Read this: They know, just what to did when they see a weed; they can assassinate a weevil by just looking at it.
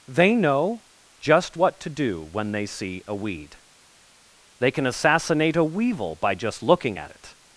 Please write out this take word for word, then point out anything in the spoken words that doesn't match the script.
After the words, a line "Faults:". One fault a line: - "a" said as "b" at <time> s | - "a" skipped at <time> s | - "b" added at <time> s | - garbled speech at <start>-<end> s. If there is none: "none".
They know, just what to do when they see a weed; they can assassinate a weevil by just looking at it.
Faults:
- "did" said as "do" at 1.9 s